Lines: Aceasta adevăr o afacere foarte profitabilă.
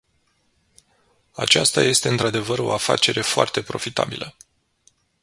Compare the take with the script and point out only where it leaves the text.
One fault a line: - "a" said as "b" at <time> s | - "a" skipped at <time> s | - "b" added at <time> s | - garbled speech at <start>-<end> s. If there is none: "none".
- "este într" added at 1.8 s